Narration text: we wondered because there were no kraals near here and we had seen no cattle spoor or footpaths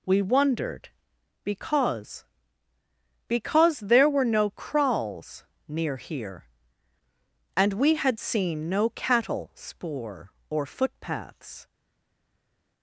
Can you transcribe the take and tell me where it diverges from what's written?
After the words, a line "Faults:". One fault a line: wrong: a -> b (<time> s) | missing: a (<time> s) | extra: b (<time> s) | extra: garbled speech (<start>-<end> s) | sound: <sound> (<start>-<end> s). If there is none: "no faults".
we wondered because because there were no kraals near here and we had seen no cattle spoor or footpaths
Faults:
extra: because (3.3 s)